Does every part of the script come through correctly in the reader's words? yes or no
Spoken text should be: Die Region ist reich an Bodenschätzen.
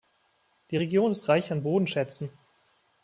yes